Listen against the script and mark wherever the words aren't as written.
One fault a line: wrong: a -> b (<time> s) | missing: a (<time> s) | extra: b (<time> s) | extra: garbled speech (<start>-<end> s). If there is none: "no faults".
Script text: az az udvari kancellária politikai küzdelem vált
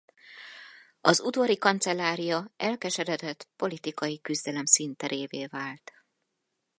missing: az (1.2 s)
extra: elkeseredett (2.6 s)
extra: színterévé (4.7 s)